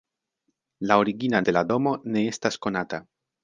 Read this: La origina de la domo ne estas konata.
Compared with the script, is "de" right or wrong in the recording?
right